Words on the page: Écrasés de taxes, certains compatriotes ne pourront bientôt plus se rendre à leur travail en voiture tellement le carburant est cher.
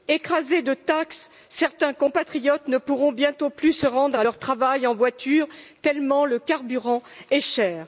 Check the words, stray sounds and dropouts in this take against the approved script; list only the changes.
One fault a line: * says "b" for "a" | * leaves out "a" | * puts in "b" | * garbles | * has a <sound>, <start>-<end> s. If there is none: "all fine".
all fine